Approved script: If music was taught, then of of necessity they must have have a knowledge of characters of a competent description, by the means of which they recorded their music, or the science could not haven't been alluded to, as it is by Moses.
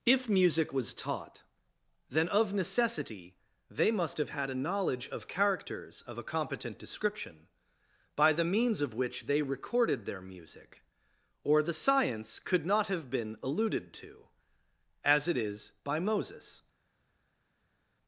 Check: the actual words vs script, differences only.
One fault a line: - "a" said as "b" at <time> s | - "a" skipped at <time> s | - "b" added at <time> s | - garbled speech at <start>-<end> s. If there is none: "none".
- "of" skipped at 2.5 s
- "have" said as "had" at 4.3 s
- "haven't" said as "have" at 12.9 s